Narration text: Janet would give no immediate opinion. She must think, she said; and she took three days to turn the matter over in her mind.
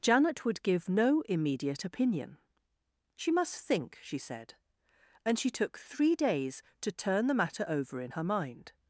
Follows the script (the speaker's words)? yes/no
yes